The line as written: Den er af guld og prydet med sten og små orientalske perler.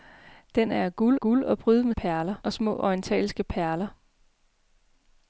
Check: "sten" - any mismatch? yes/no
yes